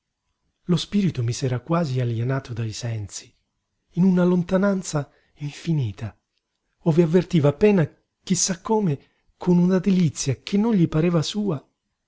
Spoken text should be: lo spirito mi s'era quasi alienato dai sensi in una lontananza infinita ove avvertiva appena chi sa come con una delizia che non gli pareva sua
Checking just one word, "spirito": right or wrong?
right